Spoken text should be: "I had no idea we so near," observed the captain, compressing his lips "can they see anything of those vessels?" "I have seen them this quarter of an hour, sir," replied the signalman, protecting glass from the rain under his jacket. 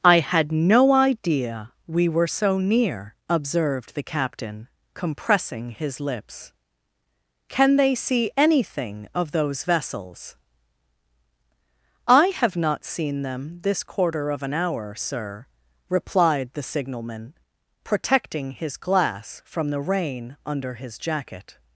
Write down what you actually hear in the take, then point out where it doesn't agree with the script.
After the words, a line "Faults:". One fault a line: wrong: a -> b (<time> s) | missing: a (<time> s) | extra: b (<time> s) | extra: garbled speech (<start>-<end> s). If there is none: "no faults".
"I had no idea we were so near," observed the captain, compressing his lips "can they see anything of those vessels?" "I have not seen them this quarter of an hour, sir," replied the signalman, protecting his glass from the rain under his jacket.
Faults:
extra: were (2.1 s)
extra: not (12.6 s)
extra: his (18.5 s)